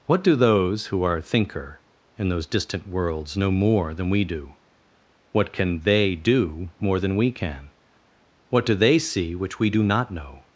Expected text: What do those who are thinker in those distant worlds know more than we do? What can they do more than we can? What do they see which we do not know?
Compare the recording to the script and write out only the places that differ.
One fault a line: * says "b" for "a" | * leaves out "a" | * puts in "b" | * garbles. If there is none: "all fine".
all fine